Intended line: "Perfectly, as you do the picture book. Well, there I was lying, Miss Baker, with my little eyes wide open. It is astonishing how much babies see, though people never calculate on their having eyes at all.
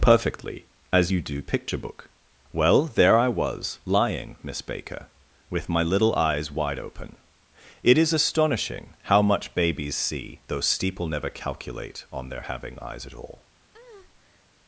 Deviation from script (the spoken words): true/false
true